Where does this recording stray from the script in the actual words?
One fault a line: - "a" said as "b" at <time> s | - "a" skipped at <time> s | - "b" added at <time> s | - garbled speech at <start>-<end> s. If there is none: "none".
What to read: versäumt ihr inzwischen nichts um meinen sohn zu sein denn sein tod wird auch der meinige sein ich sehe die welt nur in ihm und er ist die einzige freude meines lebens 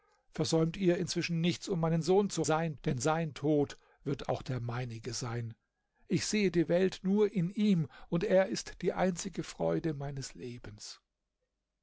none